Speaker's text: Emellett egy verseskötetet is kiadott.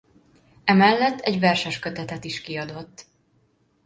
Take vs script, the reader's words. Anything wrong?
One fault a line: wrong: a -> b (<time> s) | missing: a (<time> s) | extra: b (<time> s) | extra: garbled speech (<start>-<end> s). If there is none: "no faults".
no faults